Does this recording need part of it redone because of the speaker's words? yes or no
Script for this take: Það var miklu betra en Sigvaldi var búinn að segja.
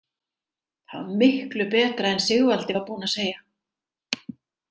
no